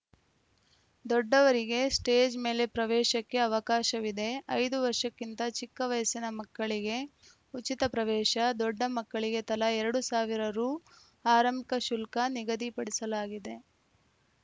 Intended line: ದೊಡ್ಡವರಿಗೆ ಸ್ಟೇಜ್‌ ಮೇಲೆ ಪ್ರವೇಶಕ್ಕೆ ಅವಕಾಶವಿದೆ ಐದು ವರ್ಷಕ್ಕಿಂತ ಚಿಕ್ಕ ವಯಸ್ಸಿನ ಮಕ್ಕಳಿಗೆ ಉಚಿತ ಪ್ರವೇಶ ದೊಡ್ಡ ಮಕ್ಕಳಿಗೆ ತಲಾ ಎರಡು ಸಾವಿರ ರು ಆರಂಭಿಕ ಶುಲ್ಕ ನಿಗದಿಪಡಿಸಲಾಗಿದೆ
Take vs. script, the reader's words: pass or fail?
pass